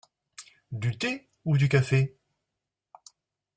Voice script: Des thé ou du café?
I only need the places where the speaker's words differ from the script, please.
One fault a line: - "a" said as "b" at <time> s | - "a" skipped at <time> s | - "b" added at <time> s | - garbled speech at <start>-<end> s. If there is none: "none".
- "Des" said as "Du" at 0.7 s